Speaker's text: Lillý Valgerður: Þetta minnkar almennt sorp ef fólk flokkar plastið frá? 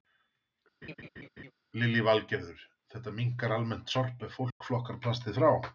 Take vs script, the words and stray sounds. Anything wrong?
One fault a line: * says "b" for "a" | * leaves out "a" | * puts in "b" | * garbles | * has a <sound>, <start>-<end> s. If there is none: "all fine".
* has a laugh, 0.8-1.5 s
* has a dropout, 4.5-4.6 s